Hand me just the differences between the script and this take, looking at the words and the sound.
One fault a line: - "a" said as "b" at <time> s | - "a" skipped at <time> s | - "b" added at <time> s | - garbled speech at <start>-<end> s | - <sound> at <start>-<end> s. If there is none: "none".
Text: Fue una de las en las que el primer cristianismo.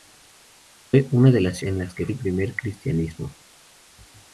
none